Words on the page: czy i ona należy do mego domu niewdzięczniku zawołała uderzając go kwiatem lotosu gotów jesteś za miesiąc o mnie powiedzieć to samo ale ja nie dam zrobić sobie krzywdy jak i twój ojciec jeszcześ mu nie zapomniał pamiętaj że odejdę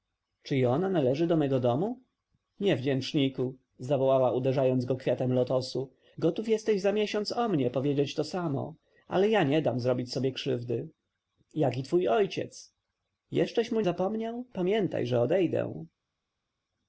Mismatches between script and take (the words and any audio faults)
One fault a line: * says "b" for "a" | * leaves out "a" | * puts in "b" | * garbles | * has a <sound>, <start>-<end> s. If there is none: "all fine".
* leaves out "nie"